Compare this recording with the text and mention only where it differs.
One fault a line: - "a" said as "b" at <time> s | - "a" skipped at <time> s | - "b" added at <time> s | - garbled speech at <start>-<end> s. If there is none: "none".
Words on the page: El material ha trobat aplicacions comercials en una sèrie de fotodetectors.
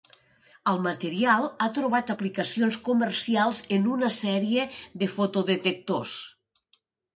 none